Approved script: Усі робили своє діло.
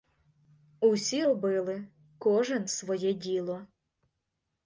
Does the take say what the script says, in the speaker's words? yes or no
no